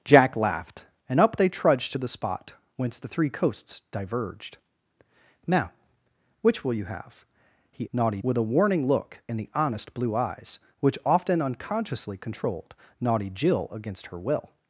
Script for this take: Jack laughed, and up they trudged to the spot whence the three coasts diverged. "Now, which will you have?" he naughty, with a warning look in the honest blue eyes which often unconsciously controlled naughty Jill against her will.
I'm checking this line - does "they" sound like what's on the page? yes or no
yes